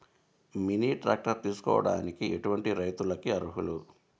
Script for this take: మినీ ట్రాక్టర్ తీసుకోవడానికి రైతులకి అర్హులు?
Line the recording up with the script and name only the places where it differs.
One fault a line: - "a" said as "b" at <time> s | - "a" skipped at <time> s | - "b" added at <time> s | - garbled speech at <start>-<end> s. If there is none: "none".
- "ఎటువంటి" added at 2.2 s